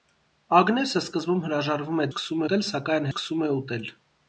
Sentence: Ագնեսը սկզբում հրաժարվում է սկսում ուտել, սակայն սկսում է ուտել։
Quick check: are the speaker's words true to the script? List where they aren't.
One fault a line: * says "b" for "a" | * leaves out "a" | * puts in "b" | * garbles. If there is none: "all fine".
all fine